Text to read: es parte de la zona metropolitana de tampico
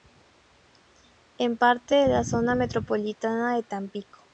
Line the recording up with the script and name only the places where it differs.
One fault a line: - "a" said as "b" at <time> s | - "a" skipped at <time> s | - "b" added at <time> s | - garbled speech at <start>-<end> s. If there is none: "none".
none